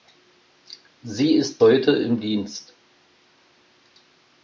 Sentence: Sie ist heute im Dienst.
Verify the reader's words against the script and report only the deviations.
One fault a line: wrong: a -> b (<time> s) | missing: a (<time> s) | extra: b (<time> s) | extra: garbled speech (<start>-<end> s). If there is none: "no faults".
no faults